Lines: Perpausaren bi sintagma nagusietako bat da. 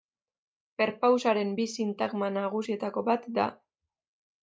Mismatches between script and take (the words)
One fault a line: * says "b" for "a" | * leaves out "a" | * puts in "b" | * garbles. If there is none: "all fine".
all fine